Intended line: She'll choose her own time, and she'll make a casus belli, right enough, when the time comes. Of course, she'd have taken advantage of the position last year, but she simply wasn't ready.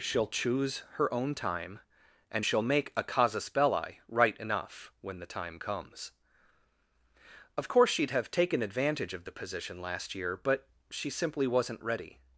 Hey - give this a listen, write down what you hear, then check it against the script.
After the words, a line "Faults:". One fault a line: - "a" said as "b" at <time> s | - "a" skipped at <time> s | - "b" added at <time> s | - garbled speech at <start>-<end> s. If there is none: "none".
She'll choose her own time, and she'll make a casus belli, right enough, when the time comes. Of course, she'd have taken advantage of the position last year, but she simply wasn't ready.
Faults:
none